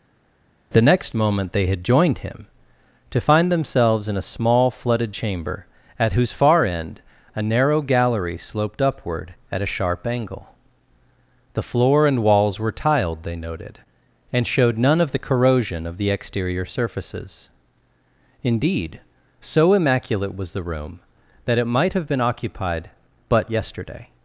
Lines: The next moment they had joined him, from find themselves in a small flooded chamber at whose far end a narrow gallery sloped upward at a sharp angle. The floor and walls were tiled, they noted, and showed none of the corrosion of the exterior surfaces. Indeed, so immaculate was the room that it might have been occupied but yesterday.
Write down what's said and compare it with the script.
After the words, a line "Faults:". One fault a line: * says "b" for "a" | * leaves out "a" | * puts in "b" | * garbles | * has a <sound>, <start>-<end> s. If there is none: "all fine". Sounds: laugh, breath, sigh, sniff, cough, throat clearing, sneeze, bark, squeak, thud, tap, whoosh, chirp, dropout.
The next moment they had joined him, to find themselves in a small flooded chamber at whose far end a narrow gallery sloped upward at a sharp angle. The floor and walls were tiled, they noted, and showed none of the corrosion of the exterior surfaces. Indeed, so immaculate was the room that it might have been occupied but yesterday.
Faults:
* says "to" for "from"